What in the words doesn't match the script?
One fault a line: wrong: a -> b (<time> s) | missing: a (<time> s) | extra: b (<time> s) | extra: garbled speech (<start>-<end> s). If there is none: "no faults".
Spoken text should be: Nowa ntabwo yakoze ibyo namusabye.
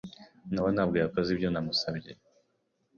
no faults